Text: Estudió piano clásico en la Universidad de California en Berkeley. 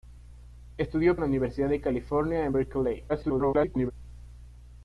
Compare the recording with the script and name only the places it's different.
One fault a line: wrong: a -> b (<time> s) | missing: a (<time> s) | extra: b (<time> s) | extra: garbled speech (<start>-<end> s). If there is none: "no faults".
missing: piano clásico (1.2 s)
extra: garbled speech (3.1-3.9 s)